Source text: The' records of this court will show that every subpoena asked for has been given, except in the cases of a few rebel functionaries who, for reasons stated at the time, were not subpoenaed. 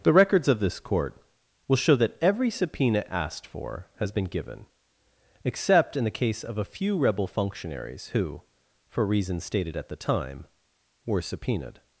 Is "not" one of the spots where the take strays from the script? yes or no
yes